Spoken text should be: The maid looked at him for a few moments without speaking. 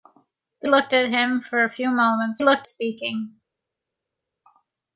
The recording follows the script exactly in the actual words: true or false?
false